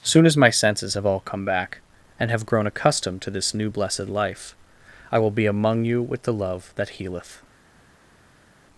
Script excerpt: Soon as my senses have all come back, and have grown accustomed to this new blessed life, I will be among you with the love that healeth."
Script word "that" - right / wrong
right